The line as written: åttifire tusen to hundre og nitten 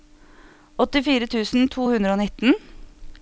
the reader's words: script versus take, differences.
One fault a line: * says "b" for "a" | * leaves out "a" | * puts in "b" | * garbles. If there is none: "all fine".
all fine